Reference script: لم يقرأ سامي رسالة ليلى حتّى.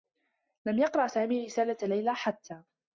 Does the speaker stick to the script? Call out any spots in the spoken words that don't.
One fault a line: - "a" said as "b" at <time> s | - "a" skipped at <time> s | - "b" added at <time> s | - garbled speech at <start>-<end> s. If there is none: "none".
none